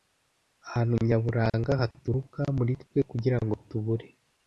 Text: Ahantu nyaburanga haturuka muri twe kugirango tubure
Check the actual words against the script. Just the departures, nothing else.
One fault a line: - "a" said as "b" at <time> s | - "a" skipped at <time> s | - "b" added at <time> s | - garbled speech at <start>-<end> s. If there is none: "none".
none